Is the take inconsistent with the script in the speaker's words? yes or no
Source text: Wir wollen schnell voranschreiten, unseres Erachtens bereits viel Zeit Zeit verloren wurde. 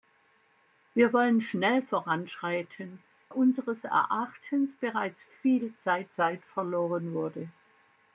no